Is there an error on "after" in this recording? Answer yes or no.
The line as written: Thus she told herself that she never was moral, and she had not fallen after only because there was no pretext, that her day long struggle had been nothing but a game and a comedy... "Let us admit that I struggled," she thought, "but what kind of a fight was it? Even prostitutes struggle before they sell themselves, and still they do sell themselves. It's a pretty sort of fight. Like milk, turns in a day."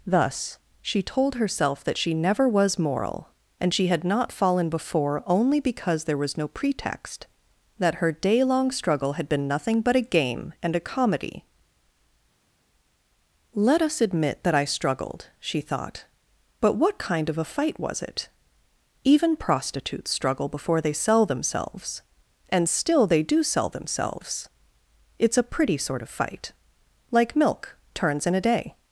yes